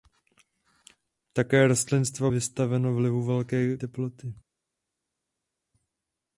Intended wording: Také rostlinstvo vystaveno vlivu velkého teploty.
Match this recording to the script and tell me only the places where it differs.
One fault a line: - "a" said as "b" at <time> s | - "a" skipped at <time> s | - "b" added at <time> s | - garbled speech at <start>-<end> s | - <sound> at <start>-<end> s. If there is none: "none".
none